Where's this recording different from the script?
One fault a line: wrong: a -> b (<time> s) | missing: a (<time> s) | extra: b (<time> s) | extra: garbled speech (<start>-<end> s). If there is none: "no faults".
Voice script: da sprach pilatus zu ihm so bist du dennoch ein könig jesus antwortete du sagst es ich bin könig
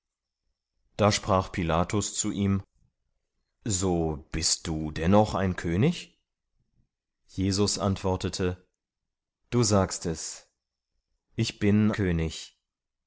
no faults